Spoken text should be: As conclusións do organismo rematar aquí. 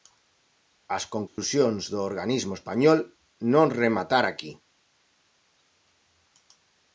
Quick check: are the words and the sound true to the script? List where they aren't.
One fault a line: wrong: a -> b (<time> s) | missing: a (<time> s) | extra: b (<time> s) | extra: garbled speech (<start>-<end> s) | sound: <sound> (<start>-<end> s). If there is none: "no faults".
sound: dropout (1.3-1.4 s)
extra: español non (2.6 s)